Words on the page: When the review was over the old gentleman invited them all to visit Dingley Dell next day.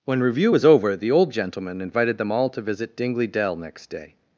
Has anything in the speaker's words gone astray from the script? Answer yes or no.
yes